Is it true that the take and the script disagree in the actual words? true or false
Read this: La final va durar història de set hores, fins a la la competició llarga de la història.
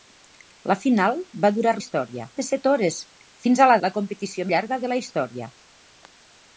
false